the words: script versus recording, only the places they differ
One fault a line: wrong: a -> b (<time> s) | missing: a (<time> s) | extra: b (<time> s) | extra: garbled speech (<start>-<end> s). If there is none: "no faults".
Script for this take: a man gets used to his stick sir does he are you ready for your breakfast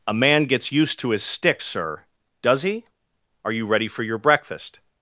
no faults